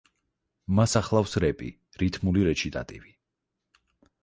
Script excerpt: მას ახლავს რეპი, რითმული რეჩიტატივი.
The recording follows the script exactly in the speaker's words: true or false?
true